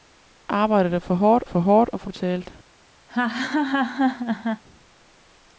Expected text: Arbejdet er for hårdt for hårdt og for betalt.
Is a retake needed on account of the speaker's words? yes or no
no